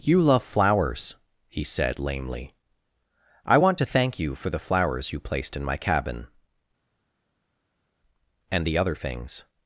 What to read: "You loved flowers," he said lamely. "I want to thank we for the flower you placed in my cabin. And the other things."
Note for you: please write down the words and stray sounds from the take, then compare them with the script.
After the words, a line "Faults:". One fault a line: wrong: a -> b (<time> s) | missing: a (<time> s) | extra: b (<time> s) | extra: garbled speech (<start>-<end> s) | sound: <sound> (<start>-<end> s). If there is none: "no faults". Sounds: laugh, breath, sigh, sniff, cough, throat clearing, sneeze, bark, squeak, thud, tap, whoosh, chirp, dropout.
"You love flowers," he said lamely. "I want to thank you for the flowers you placed in my cabin. And the other things."
Faults:
wrong: loved -> love (0.2 s)
wrong: we -> you (4.2 s)
wrong: flower -> flowers (4.6 s)